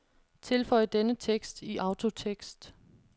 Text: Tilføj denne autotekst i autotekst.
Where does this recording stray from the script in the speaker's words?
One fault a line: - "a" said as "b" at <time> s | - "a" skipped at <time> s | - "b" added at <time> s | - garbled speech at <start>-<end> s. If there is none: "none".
- "autotekst" said as "tekst" at 1.1 s